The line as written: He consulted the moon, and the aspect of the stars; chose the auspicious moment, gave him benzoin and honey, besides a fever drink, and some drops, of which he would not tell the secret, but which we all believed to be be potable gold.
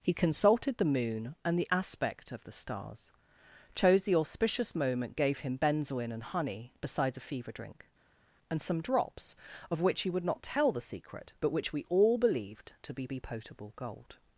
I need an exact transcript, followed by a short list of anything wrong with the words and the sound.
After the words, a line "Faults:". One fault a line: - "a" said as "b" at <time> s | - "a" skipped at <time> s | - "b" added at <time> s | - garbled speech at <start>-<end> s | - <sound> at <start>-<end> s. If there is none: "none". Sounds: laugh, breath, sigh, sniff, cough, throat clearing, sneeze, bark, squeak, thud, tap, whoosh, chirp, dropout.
He consulted the moon, and the aspect of the stars; chose the auspicious moment, gave him benzoin and honey, besides a fever drink, and some drops, of which he would not tell the secret, but which we all believed to be be potable gold.
Faults:
none